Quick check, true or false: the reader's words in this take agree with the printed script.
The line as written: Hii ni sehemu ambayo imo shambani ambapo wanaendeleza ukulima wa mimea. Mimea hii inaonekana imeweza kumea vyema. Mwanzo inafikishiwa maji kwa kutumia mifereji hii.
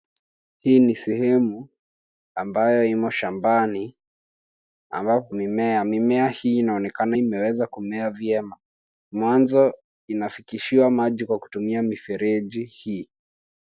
false